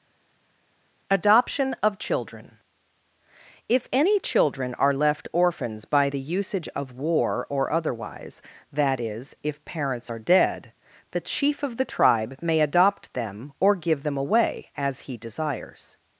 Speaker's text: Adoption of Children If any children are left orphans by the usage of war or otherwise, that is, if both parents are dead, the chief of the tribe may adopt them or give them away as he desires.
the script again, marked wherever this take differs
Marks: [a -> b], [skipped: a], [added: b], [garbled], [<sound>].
Adoption of Children If any children are left orphans by the usage of war or otherwise, that is, if [skipped: both] parents are dead, the chief of the tribe may adopt them or give them away as he desires.